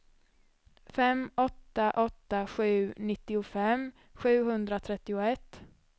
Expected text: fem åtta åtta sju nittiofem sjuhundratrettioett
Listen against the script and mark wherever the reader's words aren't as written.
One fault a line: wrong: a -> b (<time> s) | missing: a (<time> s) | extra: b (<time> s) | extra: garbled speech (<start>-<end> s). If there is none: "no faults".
no faults